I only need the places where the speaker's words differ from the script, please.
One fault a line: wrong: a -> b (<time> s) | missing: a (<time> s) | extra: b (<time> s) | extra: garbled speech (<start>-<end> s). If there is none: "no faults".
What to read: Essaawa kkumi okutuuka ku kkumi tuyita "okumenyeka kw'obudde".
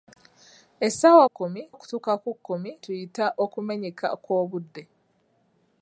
no faults